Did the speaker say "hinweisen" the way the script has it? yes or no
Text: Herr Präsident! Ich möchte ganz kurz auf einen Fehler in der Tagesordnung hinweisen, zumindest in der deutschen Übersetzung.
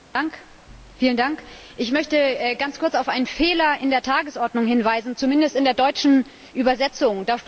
yes